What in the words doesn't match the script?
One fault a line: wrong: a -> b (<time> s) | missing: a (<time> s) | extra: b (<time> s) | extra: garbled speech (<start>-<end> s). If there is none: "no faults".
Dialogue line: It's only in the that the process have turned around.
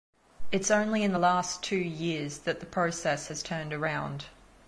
extra: last two years (1.2 s)
wrong: have -> has (3.2 s)